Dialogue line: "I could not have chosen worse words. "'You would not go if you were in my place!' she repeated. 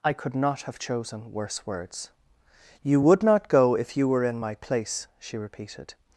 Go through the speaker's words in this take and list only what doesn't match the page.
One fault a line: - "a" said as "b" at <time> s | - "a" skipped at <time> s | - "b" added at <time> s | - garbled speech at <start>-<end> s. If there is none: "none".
none